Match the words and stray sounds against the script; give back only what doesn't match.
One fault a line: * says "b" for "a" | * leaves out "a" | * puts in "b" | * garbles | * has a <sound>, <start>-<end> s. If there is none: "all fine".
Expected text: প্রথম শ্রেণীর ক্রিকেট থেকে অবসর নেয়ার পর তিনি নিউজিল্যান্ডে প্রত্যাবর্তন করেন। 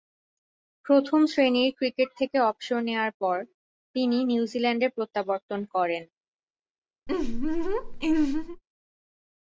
* has a laugh, 7.1-8.6 s